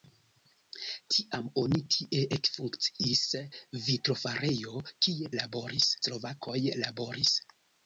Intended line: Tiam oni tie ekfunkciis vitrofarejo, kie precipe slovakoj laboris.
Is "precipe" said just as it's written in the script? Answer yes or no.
no